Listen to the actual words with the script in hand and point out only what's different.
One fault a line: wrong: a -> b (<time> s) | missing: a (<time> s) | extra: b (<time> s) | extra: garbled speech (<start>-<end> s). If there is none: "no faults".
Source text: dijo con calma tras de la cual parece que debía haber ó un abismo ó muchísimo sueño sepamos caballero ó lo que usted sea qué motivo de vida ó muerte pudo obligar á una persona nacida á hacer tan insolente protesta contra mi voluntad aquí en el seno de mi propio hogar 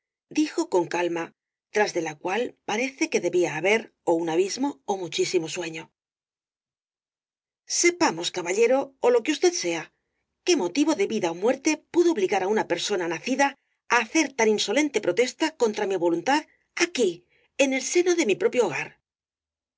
no faults